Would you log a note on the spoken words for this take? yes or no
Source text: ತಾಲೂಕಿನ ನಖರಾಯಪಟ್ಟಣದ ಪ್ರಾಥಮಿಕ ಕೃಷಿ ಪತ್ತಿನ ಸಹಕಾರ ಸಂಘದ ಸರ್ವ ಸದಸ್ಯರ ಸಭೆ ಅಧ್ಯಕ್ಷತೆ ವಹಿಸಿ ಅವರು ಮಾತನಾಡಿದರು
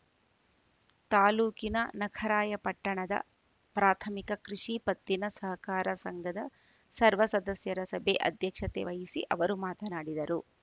no